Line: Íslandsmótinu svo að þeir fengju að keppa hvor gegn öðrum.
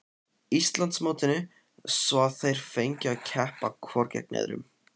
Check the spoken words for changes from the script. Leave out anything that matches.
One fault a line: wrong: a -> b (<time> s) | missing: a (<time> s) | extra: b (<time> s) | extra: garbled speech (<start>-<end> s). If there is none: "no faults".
no faults